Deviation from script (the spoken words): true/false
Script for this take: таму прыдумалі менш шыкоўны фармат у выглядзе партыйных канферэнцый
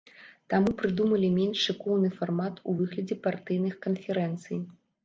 false